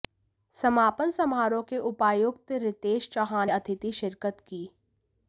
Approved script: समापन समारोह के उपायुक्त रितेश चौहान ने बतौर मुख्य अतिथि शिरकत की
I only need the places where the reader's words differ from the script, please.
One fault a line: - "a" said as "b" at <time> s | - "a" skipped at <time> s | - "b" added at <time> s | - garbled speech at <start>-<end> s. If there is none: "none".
- "ने बतौर मुख्य" skipped at 3.5 s